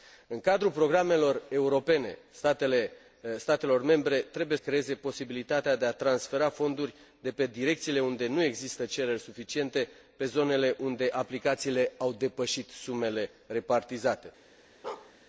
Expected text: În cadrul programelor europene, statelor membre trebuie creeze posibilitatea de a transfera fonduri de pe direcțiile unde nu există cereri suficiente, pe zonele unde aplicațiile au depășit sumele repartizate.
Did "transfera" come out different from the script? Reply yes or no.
no